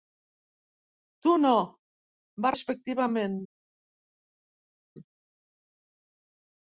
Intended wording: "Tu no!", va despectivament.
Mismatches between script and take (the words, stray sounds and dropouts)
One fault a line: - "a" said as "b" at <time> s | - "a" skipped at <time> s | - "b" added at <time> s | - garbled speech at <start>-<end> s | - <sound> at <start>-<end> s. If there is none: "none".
none